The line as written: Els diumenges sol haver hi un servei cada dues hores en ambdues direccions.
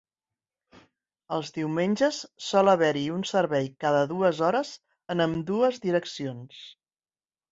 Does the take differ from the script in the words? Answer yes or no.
no